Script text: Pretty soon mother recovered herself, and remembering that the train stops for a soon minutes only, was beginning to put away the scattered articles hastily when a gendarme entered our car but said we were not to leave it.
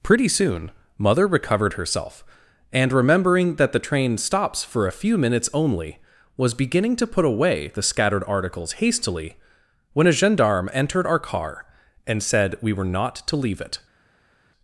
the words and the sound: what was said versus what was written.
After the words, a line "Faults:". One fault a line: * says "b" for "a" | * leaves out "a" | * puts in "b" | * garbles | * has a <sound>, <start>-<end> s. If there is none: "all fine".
Pretty soon mother recovered herself, and remembering that the train stops for a few minutes only, was beginning to put away the scattered articles hastily when a gendarme entered our car and said we were not to leave it.
Faults:
* says "few" for "soon"
* says "and" for "but"